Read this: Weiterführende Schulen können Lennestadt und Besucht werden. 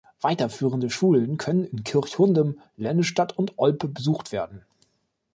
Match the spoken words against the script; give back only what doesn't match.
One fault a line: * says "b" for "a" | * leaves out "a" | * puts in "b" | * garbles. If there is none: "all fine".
* puts in "in Kirchhundem"
* puts in "Olpe"